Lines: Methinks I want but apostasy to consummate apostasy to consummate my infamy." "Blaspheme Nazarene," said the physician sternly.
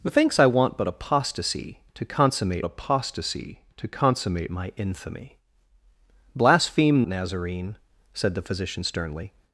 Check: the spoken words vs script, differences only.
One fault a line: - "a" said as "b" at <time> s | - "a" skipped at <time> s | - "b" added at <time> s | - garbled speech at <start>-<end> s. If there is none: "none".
none